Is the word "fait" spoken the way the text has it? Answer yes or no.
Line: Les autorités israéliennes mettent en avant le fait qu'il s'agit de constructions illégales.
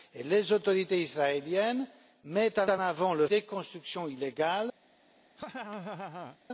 no